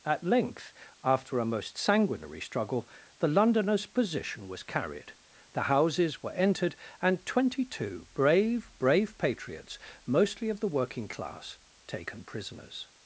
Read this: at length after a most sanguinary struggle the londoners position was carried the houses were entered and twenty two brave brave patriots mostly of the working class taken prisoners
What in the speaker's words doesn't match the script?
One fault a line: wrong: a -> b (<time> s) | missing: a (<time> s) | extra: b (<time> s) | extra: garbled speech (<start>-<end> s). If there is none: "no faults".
no faults